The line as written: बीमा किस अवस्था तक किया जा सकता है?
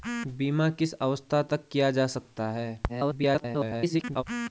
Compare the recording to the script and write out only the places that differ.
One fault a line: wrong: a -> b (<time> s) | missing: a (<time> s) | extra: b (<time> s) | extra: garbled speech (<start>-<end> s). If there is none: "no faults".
extra: garbled speech (2.9-4.2 s)